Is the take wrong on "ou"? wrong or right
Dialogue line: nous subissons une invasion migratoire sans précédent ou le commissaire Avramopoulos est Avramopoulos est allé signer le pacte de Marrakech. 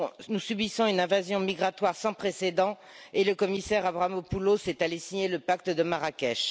wrong